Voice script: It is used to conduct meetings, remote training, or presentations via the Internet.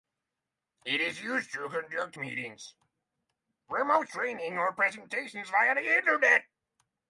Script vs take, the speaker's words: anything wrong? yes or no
no